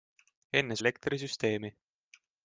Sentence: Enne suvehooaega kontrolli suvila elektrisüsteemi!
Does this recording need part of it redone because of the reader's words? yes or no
yes